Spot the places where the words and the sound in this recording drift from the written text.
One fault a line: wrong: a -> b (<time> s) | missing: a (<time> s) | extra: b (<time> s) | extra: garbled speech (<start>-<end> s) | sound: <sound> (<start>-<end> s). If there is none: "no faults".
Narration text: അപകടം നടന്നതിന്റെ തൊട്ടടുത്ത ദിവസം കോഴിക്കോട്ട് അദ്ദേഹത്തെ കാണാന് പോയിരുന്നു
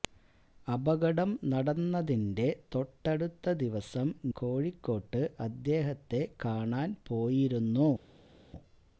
no faults